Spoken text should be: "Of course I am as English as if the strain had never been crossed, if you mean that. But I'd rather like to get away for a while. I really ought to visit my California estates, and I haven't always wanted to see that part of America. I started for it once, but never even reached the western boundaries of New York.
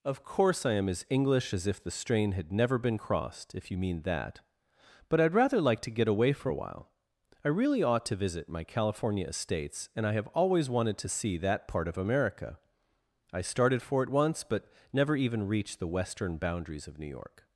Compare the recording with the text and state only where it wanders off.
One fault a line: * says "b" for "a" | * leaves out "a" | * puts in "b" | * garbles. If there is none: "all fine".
* says "have" for "haven't"